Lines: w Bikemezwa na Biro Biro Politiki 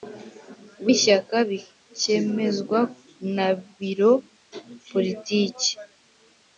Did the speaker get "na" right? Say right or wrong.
right